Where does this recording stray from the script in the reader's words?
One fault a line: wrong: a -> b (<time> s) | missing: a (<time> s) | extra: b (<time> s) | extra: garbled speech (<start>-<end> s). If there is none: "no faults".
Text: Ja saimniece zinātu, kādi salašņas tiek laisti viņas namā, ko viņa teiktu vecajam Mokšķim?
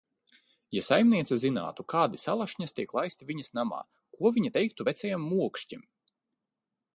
no faults